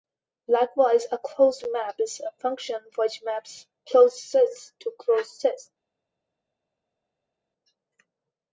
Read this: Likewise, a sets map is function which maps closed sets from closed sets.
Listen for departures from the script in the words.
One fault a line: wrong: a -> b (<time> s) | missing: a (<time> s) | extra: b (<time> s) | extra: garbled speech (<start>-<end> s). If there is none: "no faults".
wrong: sets -> closed (1.2 s)
extra: a (2.2 s)
wrong: from -> to (4.8 s)